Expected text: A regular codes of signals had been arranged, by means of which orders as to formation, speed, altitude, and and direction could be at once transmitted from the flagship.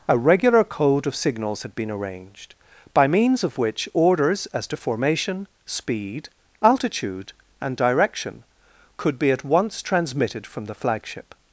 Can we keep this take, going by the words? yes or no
no